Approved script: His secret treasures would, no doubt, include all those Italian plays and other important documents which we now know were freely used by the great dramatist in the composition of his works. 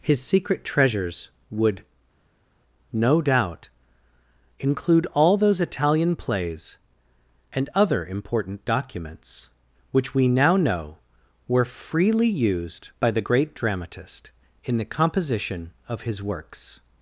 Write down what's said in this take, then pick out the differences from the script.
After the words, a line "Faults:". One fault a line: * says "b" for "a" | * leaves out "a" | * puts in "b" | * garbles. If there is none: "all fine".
His secret treasures would, no doubt, include all those Italian plays and other important documents which we now know were freely used by the great dramatist in the composition of his works.
Faults:
all fine